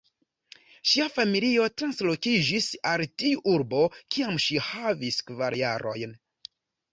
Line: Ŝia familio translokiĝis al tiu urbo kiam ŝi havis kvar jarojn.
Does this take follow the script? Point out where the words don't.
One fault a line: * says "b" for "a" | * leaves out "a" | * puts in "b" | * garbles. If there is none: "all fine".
all fine